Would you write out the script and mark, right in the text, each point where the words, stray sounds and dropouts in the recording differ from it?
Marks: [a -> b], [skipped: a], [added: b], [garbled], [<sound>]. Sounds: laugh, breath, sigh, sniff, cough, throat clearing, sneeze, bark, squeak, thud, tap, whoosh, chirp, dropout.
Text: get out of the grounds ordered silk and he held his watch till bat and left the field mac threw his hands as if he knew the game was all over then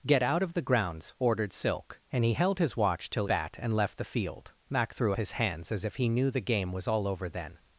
get out of the grounds ordered silk and he held his watch till bat and left the field mac threw his hands as if he knew the game was all over then